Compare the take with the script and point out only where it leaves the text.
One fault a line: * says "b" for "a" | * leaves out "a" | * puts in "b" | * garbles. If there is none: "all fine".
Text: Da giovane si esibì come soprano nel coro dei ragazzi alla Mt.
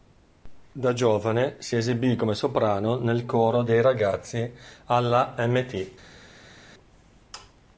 all fine